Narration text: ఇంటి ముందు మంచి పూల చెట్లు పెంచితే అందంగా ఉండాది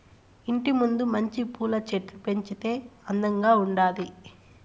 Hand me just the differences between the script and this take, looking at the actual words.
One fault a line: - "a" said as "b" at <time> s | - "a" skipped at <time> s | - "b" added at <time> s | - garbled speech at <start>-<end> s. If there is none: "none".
none